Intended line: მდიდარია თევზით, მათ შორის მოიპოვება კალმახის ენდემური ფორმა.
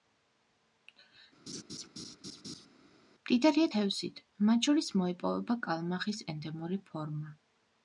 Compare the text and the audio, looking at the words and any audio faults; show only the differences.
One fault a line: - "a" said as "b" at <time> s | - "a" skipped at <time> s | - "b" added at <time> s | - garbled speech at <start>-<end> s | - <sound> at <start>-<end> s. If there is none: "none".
- laugh at 1.5-2.7 s